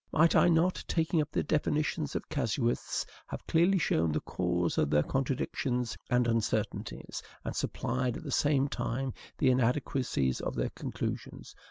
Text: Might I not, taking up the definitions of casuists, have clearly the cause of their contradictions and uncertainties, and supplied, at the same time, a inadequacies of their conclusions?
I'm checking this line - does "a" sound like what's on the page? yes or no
no